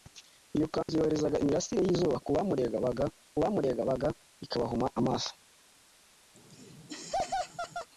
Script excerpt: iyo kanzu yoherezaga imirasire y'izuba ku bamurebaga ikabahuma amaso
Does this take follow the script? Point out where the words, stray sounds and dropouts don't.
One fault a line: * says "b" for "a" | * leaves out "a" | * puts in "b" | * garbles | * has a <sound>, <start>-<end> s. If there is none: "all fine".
* has a dropout, 0.8-0.9 s
* puts in "bamurebaga"
* has a laugh, 6.3-7.9 s